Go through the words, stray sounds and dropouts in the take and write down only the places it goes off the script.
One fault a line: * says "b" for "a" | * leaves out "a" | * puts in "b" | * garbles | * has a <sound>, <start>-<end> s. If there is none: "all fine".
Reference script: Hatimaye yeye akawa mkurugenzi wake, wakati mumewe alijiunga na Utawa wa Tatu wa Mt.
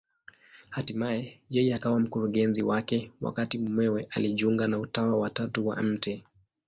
all fine